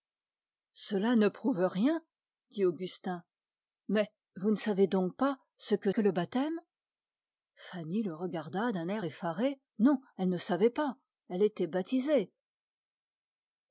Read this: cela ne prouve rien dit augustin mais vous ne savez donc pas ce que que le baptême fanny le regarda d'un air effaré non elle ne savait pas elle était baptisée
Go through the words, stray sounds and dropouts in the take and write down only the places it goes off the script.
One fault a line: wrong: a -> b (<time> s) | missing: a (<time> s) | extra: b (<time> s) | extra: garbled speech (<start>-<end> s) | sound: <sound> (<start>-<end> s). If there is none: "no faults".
no faults